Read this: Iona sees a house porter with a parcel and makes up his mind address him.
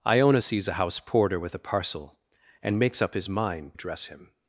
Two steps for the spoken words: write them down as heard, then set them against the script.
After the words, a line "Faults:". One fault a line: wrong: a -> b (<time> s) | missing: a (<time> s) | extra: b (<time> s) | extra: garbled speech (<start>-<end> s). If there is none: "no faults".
Iona sees a house porter with a parcel and makes up his mind address him.
Faults:
no faults